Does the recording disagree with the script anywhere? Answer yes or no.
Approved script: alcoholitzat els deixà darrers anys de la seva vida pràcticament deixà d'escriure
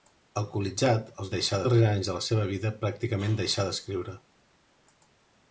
no